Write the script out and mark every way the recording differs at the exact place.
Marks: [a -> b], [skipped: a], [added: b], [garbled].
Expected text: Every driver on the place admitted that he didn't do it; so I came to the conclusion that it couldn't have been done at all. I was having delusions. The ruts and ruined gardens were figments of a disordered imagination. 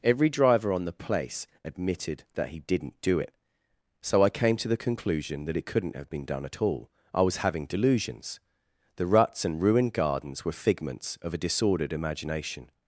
Every driver on the place admitted that he didn't do it; so I came to the conclusion that it couldn't have been done at all. I was having delusions. The ruts and ruined gardens were figments of a disordered imagination.